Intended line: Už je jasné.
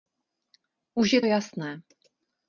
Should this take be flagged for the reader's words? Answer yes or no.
no